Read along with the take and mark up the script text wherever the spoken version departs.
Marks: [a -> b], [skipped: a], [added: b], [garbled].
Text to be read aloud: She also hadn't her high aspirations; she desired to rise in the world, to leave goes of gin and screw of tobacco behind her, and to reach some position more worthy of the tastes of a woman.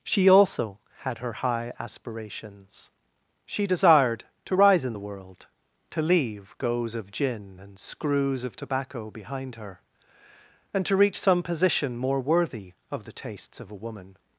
She also [hadn't -> had] her high aspirations; she desired to rise in the world, to leave goes of gin and [screw -> screws] of tobacco behind her, and to reach some position more worthy of the tastes of a woman.